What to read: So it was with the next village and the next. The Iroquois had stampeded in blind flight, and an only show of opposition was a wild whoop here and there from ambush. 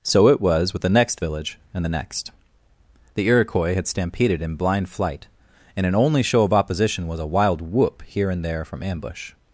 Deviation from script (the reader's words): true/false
false